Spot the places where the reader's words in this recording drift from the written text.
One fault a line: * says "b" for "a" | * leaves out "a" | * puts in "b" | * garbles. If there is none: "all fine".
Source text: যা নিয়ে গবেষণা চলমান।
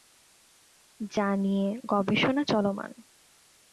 all fine